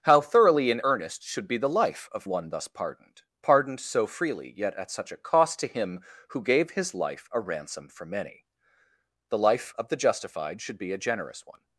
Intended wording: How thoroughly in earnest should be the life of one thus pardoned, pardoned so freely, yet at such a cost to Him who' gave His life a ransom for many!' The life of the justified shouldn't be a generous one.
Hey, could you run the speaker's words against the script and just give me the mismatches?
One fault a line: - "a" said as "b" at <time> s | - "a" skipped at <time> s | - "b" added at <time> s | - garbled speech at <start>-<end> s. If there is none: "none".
- "shouldn't" said as "should" at 10.6 s